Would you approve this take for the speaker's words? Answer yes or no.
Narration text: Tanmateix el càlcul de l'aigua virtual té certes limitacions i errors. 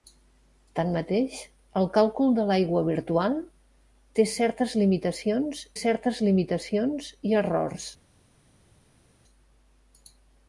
no